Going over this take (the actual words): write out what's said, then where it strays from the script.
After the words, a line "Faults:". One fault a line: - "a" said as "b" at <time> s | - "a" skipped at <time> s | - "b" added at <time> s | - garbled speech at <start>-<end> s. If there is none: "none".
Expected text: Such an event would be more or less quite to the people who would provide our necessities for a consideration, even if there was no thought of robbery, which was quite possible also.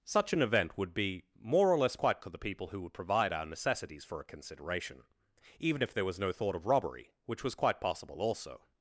Such an event would be more or less quite to the people who would provide our necessities for a consideration, even if there was no thought of robbery, which was quite possible also.
Faults:
none